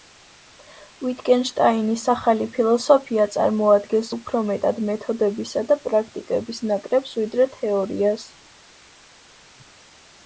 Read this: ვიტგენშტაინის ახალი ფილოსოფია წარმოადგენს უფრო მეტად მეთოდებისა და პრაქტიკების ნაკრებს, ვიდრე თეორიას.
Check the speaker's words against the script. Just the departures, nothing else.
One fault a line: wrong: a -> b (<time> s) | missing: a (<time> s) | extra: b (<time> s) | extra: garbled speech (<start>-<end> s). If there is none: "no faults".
no faults